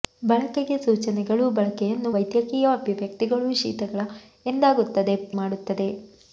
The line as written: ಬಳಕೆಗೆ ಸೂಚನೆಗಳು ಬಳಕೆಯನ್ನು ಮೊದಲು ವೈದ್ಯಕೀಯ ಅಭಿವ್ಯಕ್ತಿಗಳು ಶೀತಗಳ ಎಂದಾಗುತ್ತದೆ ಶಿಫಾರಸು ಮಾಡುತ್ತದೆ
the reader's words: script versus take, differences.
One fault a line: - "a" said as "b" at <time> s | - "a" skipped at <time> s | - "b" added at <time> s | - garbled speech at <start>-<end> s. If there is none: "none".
- "ಮೊದಲು" skipped at 2.1 s
- "ಶಿಫಾರಸು" skipped at 5.2 s